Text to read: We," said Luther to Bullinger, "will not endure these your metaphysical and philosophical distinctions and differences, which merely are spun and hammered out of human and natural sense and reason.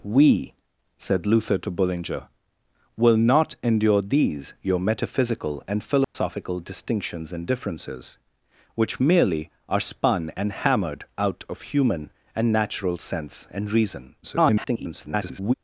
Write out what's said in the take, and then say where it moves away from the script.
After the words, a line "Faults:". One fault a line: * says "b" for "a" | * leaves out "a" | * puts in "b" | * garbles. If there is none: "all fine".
We," said Luther to Bullinger, "will not endure these your metaphysical and philosophical distinctions and differences, which merely are spun and hammered out of human and natural sense and reason. [garbled]
Faults:
* garbles